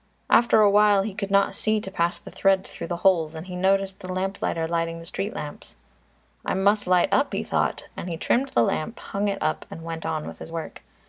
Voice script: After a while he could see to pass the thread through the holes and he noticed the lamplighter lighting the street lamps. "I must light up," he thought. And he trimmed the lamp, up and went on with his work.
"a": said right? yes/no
yes